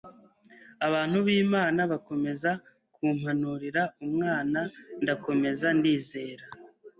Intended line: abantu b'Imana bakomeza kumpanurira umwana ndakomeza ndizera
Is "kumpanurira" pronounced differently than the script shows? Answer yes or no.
no